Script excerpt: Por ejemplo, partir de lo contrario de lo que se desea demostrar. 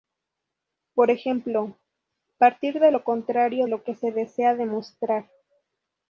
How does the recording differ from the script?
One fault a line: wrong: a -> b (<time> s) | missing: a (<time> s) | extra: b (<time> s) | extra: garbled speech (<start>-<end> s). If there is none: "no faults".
missing: de (3.7 s)